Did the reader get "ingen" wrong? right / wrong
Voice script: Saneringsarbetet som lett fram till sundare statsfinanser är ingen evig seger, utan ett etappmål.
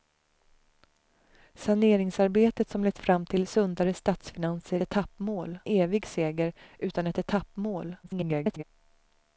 wrong